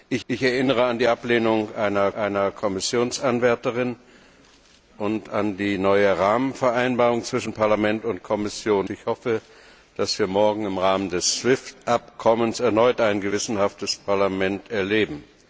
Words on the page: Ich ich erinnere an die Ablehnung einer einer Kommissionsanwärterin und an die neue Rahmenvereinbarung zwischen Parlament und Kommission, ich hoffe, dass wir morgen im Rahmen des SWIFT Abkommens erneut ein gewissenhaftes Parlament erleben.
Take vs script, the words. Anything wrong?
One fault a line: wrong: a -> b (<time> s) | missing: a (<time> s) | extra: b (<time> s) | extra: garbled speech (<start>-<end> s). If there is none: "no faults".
no faults